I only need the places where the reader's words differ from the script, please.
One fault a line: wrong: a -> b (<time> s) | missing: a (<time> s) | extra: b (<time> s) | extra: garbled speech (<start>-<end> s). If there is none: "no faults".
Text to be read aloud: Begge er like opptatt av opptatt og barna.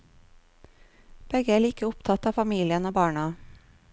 wrong: opptatt -> familien (2.3 s)